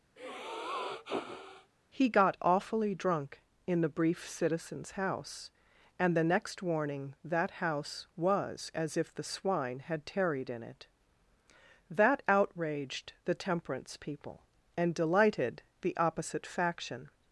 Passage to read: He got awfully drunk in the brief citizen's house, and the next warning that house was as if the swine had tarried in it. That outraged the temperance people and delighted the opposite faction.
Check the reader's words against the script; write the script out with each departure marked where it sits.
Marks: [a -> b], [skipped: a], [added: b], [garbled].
He got awfully drunk in the brief citizen's house, and the next warning that house was as if the swine had tarried in it. That outraged the temperance people and delighted the opposite faction.